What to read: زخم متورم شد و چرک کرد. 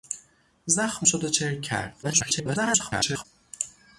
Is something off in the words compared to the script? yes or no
yes